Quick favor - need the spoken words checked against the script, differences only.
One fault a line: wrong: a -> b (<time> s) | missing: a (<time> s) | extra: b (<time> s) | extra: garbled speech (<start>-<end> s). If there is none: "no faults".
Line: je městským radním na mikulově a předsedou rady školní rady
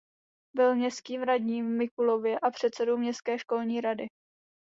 wrong: je -> byl (0.6 s)
wrong: na -> v (1.6 s)
wrong: rady -> městské (3.0 s)